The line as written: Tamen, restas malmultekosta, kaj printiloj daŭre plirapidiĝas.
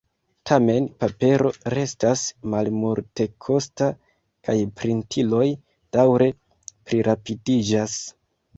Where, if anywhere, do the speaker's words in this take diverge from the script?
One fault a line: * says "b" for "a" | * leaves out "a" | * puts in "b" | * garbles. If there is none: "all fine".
* puts in "papero"